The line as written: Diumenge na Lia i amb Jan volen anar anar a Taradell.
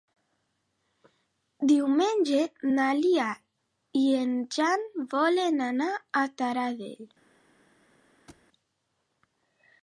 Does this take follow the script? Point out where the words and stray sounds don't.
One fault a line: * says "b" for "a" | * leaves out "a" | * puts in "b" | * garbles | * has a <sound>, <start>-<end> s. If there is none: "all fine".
* says "en" for "amb"
* leaves out "anar"
* has a thud, 8.3-8.5 s